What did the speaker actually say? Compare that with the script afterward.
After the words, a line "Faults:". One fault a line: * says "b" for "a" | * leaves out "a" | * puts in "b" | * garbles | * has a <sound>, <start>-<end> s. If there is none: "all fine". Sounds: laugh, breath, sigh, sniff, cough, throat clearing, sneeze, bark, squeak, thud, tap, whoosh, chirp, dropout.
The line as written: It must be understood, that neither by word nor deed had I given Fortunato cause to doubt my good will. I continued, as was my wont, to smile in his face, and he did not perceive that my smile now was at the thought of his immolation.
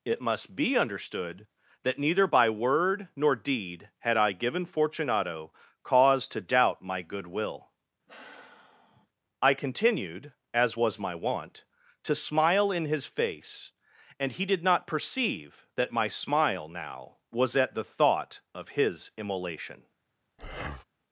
It must be understood, that neither by word nor deed had I given Fortunato cause to doubt my good will. I continued, as was my wont, to smile in his face, and he did not perceive that my smile now was at the thought of his immolation.
Faults:
* has a sigh, 8.1-9.1 s
* has a breath, 20.4-20.8 s